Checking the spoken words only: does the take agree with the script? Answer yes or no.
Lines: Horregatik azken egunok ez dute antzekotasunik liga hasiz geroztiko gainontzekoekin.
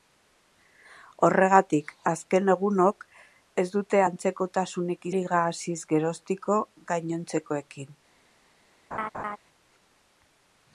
yes